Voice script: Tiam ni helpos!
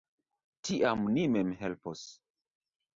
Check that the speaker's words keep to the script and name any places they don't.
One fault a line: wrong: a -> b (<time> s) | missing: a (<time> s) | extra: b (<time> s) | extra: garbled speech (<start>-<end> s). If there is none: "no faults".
extra: mem (1.4 s)